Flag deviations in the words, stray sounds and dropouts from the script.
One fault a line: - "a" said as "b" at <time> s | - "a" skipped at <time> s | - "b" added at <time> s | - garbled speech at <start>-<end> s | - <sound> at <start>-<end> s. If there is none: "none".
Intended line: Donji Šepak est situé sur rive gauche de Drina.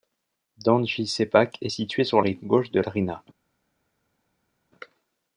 none